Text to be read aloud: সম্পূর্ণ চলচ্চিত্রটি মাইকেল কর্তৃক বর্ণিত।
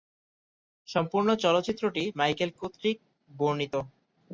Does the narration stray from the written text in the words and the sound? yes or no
no